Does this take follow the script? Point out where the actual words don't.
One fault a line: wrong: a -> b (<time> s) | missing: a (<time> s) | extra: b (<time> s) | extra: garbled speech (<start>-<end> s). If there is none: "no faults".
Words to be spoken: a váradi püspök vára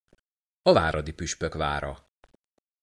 no faults